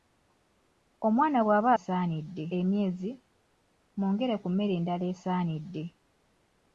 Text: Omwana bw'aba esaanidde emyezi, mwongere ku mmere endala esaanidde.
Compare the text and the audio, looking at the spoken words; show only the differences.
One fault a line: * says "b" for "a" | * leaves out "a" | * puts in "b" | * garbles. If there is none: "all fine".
all fine